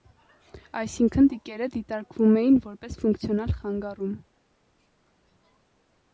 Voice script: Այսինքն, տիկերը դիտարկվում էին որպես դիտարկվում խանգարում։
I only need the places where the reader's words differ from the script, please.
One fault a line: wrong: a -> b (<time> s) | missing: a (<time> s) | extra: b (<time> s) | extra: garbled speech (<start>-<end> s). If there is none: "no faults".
wrong: դիտարկվում -> ֆունկցիոնալ (3.0 s)